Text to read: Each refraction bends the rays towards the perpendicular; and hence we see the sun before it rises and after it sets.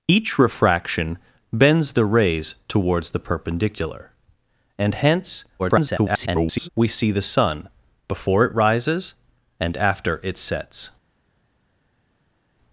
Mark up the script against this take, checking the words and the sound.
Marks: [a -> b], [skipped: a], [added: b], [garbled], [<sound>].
Each refraction bends the rays towards the perpendicular; and hence [garbled] we see the sun before it rises and after it sets.